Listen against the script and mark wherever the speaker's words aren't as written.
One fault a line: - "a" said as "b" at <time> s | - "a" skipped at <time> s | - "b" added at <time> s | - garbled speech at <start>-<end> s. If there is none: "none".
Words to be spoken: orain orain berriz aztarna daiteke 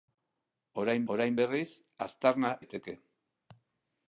none